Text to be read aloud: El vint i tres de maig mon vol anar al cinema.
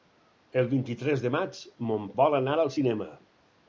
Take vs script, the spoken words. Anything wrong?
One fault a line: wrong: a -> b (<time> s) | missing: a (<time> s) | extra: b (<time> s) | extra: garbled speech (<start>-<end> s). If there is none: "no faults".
no faults